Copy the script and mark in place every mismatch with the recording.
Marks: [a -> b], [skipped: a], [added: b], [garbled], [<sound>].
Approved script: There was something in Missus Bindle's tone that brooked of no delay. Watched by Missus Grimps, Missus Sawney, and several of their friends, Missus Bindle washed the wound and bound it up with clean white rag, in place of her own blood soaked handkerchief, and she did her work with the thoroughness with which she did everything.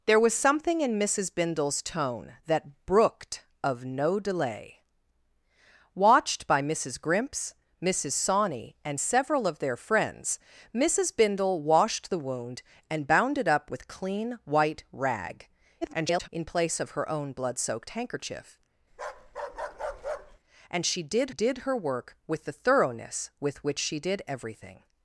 There was something in Missus Bindle's tone that brooked of no delay. Watched by Missus Grimps, Missus Sawney, and several of their friends, Missus Bindle washed the wound and bound it up with clean white rag, [garbled] in place of her own blood soaked handkerchief, [bark] and she did [added: did] her work with the thoroughness with which she did everything.